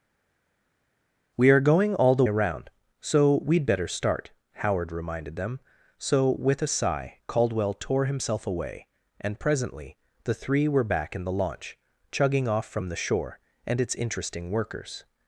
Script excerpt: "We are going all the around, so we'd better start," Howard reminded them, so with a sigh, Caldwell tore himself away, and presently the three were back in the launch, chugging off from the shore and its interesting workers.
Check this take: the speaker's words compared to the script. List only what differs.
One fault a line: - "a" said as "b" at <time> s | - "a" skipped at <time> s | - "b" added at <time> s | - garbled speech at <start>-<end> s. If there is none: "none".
none